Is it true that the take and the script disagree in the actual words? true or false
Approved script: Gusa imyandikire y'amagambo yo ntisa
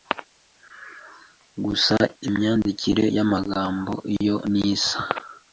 false